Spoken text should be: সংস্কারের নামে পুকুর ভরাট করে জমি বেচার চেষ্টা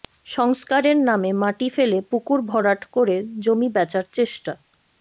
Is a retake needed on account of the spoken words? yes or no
yes